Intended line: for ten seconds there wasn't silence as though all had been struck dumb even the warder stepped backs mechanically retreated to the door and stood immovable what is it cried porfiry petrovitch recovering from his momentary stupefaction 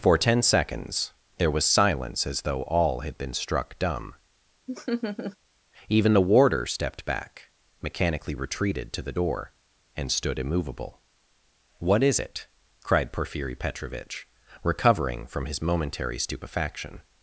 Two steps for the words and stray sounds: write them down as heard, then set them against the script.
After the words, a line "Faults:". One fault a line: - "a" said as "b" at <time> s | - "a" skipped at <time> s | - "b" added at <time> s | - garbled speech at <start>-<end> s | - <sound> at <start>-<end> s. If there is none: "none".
for ten seconds there was silence as though all had been struck dumb even the warder stepped back mechanically retreated to the door and stood immovable what is it cried porfiry petrovitch recovering from his momentary stupefaction
Faults:
- "wasn't" said as "was" at 1.5 s
- laugh at 4.7-5.4 s
- "backs" said as "back" at 7.1 s